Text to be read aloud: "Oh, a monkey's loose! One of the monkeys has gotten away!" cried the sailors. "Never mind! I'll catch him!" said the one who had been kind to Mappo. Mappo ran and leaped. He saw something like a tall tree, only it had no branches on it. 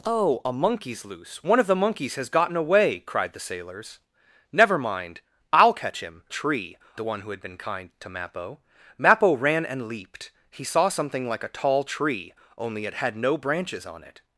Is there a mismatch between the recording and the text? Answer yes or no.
yes